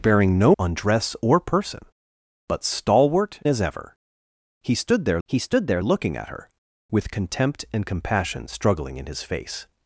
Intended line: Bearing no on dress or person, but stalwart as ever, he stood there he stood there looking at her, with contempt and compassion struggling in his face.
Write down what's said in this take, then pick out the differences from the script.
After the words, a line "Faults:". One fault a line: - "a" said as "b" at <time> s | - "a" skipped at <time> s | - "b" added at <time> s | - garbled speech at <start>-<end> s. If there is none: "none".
Bearing no on dress or person, but stalwart as ever, he stood there he stood there looking at her, with contempt and compassion struggling in his face.
Faults:
none